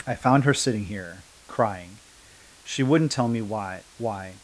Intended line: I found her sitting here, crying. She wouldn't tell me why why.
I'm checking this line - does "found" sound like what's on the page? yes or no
yes